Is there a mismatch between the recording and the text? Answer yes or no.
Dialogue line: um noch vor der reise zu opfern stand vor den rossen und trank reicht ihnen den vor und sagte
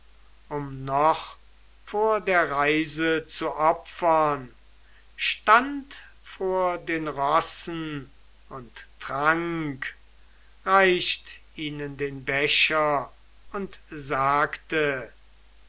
yes